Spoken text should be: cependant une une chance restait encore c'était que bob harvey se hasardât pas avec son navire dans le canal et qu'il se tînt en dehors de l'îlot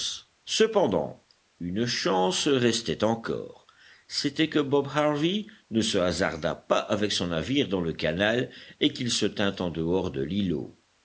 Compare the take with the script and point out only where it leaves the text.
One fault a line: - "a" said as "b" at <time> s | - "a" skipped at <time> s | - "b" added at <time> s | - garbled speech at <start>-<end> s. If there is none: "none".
- "une" skipped at 1.9 s
- "ne" added at 5.7 s